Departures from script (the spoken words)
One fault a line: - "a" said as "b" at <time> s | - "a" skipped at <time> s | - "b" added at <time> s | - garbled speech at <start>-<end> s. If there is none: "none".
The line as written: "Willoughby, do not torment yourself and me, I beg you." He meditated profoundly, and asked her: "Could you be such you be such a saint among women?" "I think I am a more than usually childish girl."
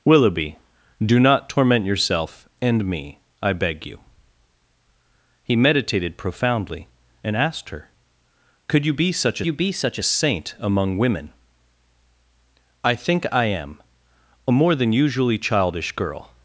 none